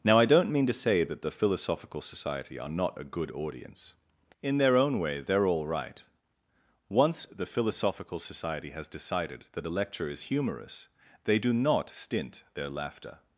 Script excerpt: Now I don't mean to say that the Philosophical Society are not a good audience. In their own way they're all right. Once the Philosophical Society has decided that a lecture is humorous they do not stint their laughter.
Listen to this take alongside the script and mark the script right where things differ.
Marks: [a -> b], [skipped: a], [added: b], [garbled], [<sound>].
Now I don't mean to say that the Philosophical Society are not a good audience. In their own way they're all right. Once the Philosophical Society has decided that a lecture is humorous they do not stint their laughter.